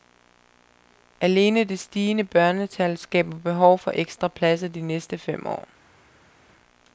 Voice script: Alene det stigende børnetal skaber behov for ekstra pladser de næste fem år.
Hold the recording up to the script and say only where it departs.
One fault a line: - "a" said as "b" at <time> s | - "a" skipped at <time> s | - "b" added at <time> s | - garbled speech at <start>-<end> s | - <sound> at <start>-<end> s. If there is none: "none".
none